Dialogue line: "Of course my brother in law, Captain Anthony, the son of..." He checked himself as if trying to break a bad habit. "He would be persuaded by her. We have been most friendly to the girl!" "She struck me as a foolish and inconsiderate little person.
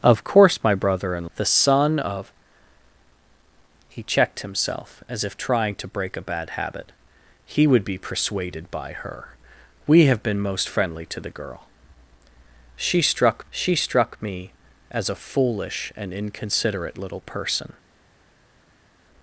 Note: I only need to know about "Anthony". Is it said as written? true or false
false